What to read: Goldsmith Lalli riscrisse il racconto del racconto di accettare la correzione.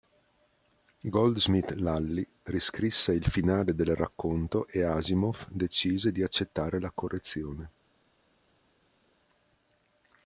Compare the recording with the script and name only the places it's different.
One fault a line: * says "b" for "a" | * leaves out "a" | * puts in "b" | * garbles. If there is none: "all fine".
* says "finale" for "racconto"
* puts in "e Asimov decise"